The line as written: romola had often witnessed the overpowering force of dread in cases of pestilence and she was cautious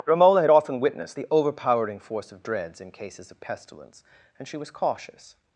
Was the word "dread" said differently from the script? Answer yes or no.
yes